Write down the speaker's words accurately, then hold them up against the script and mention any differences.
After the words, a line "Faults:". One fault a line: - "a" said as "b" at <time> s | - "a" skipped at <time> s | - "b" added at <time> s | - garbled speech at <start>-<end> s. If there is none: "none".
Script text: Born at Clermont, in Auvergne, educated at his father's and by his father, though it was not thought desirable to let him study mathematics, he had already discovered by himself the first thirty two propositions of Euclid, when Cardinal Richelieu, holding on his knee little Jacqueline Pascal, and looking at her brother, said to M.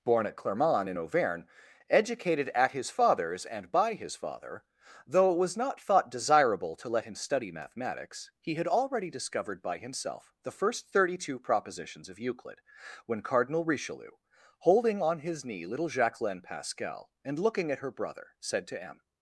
Born at Clermont, in Auvergne, educated at his father's and by his father, though it was not thought desirable to let him study mathematics, he had already discovered by himself the first thirty two propositions of Euclid, when Cardinal Richelieu, holding on his knee little Jacqueline Pascal, and looking at her brother, said to M.
Faults:
none